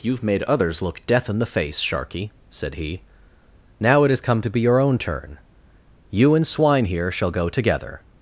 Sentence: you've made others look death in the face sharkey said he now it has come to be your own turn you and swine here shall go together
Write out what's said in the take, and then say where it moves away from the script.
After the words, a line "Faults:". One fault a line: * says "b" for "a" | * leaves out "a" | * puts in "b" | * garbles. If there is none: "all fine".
you've made others look death in the face sharkey said he now it has come to be your own turn you and swine here shall go together
Faults:
all fine